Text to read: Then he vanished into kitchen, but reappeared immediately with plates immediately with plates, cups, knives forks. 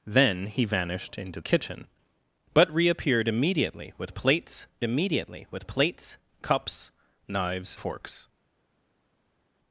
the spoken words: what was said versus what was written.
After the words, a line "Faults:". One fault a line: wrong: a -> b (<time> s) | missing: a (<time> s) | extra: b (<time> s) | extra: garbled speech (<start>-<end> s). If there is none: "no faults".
Then he vanished into kitchen, but reappeared immediately with plates immediately with plates, cups, knives forks.
Faults:
no faults